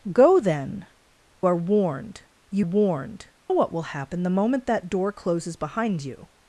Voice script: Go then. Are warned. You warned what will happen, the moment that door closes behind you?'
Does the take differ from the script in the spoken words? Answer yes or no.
no